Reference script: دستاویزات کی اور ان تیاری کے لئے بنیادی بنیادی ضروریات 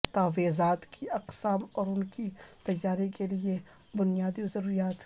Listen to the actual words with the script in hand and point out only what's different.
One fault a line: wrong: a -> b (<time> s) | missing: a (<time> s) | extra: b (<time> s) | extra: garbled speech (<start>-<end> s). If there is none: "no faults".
extra: اقسام (1.1 s)
extra: کی (2.1 s)
missing: بنیادی (4.5 s)